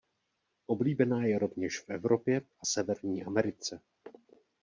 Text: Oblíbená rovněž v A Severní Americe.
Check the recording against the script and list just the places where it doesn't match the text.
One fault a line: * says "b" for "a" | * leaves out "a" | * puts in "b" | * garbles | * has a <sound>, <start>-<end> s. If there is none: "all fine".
* puts in "je"
* puts in "Evropě"